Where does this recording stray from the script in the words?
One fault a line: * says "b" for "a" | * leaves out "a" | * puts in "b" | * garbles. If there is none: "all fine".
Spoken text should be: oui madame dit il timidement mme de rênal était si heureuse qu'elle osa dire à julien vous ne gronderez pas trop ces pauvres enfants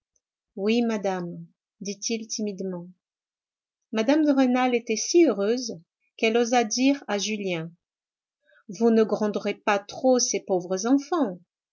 all fine